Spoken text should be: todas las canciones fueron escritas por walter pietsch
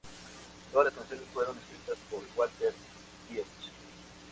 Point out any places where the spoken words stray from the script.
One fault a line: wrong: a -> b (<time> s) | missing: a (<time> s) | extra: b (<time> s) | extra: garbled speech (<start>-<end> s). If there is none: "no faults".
no faults